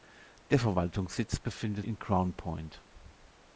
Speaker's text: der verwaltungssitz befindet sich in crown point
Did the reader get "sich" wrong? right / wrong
wrong